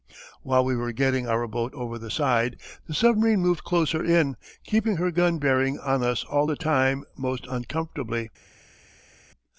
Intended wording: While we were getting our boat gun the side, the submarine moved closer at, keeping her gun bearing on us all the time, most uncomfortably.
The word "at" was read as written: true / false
false